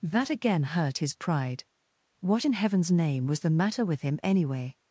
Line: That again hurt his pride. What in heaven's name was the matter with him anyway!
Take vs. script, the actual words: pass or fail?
pass